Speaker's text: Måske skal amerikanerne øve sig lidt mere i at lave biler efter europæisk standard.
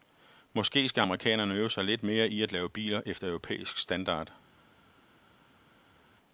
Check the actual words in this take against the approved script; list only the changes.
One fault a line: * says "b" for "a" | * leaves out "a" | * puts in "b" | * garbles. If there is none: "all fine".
all fine